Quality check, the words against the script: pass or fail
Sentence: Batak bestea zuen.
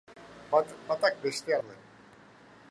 pass